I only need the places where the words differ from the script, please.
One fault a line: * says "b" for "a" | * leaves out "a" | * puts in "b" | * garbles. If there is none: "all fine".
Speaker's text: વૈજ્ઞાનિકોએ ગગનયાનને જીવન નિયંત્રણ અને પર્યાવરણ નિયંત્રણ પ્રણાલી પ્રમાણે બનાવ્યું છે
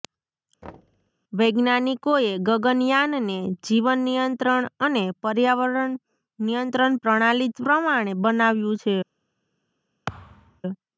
all fine